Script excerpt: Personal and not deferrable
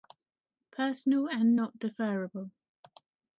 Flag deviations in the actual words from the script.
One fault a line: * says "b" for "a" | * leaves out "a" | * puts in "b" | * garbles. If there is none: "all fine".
all fine